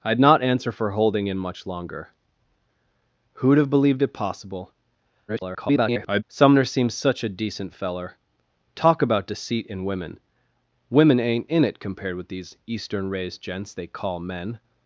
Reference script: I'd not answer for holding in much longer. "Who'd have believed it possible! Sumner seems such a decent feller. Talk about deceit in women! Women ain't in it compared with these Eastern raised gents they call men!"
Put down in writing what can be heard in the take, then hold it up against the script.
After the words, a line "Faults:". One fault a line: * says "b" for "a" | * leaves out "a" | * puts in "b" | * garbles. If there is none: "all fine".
I'd not answer for holding in much longer. "Who'd have believed it possible! [garbled] Sumner seems such a decent feller. Talk about deceit in women! Women ain't in it compared with these Eastern raised gents they call men!"
Faults:
* garbles